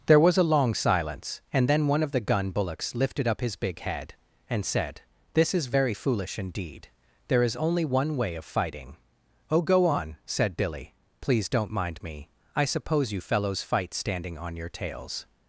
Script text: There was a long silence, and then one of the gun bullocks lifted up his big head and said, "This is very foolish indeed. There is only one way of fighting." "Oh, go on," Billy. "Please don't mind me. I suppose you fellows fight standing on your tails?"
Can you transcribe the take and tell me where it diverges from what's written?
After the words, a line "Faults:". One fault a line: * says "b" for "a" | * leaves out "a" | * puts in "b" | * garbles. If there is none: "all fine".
There was a long silence, and then one of the gun bullocks lifted up his big head and said, "This is very foolish indeed. There is only one way of fighting." "Oh, go on," said Billy. "Please don't mind me. I suppose you fellows fight standing on your tails?"
Faults:
* puts in "said"